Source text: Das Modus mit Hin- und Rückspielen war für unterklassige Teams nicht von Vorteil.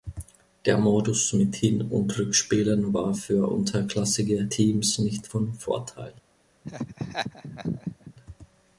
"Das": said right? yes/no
no